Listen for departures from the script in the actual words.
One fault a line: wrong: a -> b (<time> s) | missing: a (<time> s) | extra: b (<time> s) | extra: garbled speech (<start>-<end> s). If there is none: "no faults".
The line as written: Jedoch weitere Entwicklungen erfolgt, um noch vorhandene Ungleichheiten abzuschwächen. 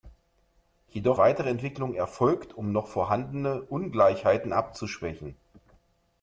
no faults